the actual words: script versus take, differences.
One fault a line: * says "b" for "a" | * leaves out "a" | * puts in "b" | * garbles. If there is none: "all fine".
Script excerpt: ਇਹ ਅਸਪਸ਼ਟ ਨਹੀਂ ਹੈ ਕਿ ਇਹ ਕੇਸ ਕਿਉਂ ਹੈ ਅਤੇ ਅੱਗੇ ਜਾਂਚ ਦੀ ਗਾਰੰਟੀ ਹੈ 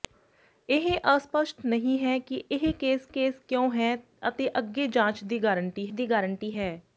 * puts in "ਕੇਸ"
* puts in "ਦੀ ਗਾਰੰਟੀ"